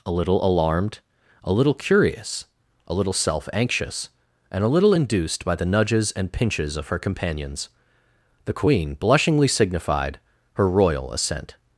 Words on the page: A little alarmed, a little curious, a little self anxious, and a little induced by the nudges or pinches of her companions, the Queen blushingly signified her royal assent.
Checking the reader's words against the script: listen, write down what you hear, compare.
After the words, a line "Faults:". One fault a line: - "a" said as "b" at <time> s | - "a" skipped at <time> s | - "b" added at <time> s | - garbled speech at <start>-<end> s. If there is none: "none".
A little alarmed, a little curious, a little self anxious, and a little induced by the nudges and pinches of her companions, the Queen blushingly signified her royal assent.
Faults:
- "or" said as "and" at 6.1 s